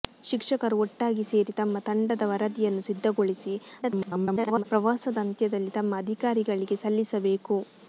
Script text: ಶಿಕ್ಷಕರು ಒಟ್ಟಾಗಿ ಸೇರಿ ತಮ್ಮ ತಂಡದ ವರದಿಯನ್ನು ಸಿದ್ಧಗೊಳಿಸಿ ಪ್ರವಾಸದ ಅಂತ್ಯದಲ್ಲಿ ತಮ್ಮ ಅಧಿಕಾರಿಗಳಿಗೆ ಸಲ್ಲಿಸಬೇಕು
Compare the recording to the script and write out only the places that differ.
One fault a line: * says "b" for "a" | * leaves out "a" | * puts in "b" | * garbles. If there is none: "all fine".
* garbles